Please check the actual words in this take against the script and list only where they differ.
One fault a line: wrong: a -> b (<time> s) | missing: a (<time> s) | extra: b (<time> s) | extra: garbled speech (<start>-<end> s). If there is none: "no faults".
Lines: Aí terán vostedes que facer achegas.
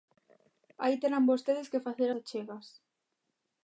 no faults